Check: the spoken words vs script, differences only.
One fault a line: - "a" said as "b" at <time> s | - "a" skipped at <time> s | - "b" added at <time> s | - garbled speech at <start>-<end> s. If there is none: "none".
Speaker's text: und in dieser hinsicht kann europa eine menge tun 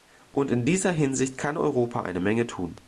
none